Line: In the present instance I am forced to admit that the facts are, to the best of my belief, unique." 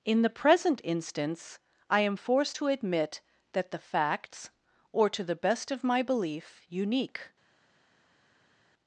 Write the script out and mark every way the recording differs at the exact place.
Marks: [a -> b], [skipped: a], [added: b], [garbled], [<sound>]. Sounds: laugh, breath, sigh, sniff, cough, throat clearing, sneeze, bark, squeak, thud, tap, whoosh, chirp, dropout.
In the present instance I am forced to admit that the facts [are, -> or] to the best of my belief, unique."